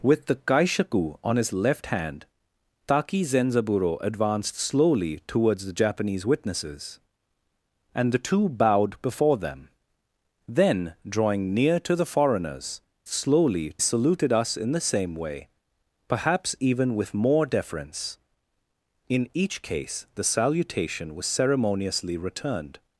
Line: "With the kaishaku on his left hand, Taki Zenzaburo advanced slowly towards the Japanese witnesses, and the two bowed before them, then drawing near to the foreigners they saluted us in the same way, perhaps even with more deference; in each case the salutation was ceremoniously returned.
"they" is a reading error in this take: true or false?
true